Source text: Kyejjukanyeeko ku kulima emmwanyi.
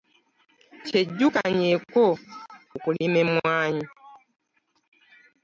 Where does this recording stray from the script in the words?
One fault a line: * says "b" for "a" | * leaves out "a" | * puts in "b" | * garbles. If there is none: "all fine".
all fine